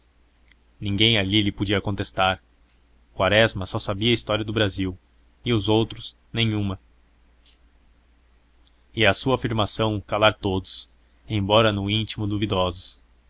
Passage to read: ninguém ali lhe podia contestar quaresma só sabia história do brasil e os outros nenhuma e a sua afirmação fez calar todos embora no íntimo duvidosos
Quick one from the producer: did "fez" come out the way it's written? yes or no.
no